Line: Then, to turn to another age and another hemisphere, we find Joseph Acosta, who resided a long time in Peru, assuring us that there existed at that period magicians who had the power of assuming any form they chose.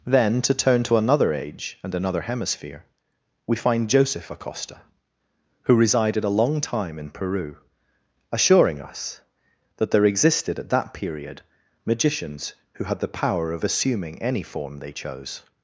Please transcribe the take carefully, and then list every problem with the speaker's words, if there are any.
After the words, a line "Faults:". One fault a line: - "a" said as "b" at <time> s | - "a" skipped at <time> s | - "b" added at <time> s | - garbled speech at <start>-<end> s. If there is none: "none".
Then, to turn to another age and another hemisphere, we find Joseph Acosta, who resided a long time in Peru, assuring us that there existed at that period magicians who had the power of assuming any form they chose.
Faults:
none